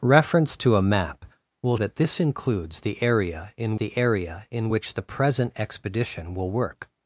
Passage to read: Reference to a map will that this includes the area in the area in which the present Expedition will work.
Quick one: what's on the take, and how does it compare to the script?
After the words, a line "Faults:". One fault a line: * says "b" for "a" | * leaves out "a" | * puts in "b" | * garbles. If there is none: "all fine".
Reference to a map will that this includes the area in the area in which the present Expedition will work.
Faults:
all fine